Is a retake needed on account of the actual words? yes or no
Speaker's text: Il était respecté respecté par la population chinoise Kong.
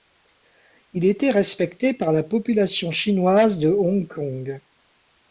yes